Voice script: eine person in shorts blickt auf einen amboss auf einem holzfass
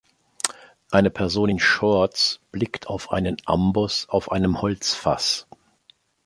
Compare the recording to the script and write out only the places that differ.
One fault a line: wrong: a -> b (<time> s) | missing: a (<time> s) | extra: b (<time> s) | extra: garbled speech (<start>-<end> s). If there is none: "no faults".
no faults